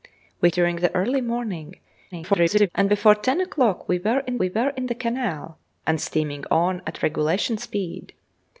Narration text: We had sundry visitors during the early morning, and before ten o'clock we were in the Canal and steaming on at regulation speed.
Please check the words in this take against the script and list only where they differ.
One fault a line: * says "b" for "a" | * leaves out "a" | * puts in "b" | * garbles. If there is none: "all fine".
* leaves out "had sundry visitors"
* garbles
* puts in "we were in"